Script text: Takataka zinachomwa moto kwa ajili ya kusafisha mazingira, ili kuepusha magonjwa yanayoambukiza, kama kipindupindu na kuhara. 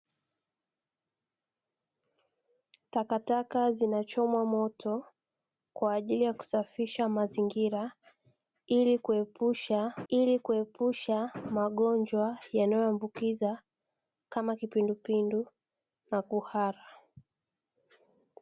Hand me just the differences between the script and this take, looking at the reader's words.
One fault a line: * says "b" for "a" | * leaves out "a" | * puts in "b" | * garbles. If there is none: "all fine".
* puts in "ili kuepusha"